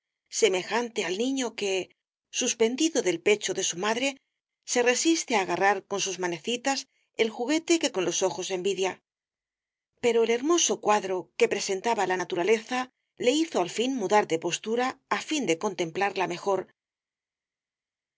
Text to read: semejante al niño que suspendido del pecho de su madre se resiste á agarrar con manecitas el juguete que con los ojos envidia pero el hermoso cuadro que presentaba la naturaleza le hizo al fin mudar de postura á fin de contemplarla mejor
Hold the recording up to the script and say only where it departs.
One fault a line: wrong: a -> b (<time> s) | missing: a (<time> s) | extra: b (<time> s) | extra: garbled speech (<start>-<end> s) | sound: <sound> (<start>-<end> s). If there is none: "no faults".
extra: sus (6.0 s)